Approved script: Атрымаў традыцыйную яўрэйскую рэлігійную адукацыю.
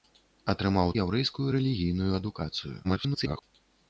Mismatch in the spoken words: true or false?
true